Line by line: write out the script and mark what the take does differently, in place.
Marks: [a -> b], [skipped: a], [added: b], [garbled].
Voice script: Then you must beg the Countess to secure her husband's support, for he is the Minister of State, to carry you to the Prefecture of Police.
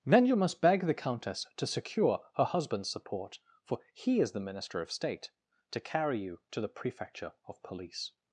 Then you must beg the Countess to secure her husband's support, for he is the Minister of State, to carry you to the Prefecture of Police.